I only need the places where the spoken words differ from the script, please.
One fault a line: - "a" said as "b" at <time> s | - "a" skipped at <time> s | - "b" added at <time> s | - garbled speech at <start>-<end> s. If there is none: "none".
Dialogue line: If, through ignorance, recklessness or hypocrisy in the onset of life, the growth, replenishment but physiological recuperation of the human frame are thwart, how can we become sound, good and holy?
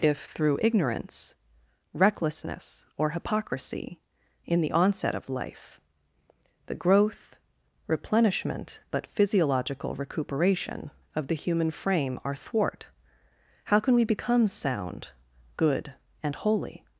none